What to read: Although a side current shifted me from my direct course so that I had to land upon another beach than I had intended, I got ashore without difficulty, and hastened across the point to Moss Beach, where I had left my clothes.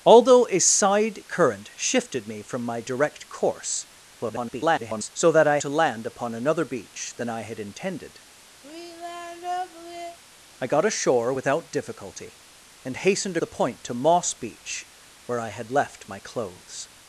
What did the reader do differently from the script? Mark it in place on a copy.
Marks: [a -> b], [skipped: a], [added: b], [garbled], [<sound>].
Although a side current shifted me from my direct course [garbled] so that I [skipped: had] to land upon another beach than I had intended, [sigh] I got ashore without difficulty, and hastened [skipped: across] the point to Moss Beach, where I had left my clothes.